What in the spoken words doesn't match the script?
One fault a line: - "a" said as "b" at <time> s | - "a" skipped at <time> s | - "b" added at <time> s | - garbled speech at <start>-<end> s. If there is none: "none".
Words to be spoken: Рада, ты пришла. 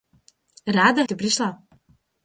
none